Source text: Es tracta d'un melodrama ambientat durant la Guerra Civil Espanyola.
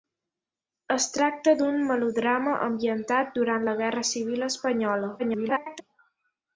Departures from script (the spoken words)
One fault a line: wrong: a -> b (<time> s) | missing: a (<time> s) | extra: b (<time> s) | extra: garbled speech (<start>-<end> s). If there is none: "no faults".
extra: garbled speech (5.2-5.8 s)